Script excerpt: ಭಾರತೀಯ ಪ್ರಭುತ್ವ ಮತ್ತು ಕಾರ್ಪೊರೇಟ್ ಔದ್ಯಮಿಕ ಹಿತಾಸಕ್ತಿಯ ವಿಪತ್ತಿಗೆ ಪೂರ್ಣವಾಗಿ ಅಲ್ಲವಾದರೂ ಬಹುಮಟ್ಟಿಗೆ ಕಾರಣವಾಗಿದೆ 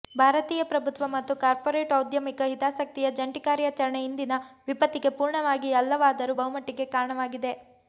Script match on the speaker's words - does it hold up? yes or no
no